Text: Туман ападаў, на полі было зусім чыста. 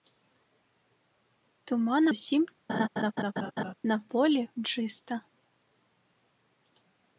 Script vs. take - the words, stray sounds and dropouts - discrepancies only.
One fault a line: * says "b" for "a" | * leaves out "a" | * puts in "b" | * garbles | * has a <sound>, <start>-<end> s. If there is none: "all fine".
* says "зусім" for "ападаў"
* has a laugh, 2.7-3.7 s
* leaves out "было зусім"